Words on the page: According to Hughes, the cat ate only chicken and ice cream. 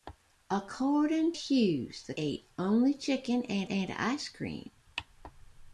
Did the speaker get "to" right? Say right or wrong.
wrong